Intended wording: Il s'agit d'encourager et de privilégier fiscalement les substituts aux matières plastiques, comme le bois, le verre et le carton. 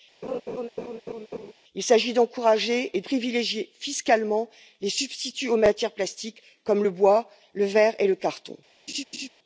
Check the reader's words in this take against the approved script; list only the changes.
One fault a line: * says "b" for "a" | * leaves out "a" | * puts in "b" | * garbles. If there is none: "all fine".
* leaves out "de"